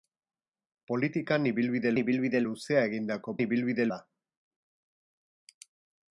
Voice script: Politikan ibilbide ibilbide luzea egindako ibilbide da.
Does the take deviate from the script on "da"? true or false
false